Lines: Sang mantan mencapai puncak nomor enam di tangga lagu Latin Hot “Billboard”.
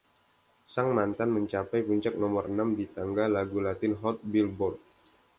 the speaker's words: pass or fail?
pass